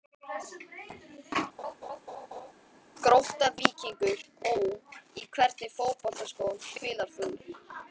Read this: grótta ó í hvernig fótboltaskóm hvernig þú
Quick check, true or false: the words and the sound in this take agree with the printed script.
false